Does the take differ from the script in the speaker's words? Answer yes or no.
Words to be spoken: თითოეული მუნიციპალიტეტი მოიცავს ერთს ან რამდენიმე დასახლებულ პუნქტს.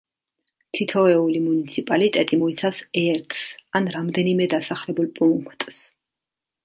no